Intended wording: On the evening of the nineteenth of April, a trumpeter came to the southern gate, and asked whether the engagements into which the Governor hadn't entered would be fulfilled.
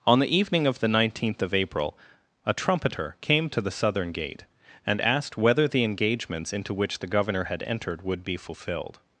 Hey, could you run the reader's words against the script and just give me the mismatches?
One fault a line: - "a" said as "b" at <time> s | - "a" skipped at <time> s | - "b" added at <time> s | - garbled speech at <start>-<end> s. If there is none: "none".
- "hadn't" said as "had" at 7.5 s